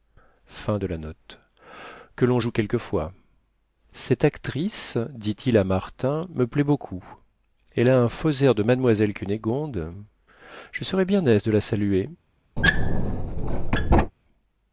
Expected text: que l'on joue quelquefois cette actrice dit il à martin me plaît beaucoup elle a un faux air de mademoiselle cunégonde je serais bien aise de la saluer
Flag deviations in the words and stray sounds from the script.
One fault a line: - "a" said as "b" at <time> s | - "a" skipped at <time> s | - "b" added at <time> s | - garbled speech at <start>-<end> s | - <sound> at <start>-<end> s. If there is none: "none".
- squeak at 12.6-14.1 s